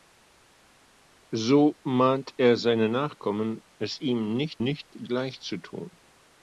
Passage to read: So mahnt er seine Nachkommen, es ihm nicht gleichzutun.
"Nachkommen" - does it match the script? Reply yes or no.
yes